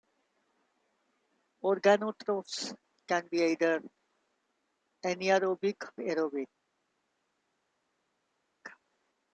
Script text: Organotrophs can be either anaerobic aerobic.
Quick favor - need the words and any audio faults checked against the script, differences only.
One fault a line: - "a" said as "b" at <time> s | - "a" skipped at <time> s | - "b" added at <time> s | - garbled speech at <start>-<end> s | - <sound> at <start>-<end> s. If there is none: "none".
none